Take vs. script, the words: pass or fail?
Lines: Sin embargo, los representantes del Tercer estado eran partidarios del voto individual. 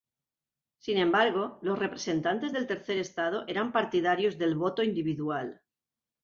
pass